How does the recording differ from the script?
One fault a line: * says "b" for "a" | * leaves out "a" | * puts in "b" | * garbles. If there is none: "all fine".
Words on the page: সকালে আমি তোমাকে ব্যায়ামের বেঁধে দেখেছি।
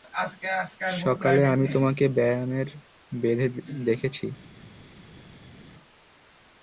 all fine